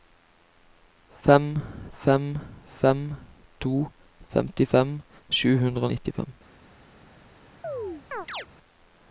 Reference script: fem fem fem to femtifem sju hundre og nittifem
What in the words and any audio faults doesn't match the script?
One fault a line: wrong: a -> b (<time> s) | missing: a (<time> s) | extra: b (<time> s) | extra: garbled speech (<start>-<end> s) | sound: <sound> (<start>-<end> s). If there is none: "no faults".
sound: chirp (7.6-8.5 s)